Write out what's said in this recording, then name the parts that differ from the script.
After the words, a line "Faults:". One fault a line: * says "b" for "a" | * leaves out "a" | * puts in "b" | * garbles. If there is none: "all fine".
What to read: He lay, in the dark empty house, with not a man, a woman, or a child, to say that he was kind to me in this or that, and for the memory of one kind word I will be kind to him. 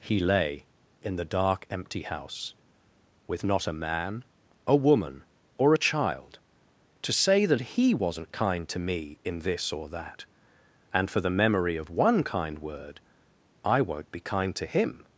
He lay, in the dark empty house, with not a man, a woman, or a child, to say that he wasn't kind to me in this or that, and for the memory of one kind word I won't be kind to him.
Faults:
* says "wasn't" for "was"
* says "won't" for "will"